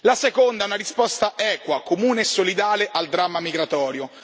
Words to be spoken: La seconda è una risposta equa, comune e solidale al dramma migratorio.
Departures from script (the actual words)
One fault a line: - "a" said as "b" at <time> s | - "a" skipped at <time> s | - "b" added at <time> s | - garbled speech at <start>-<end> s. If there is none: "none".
none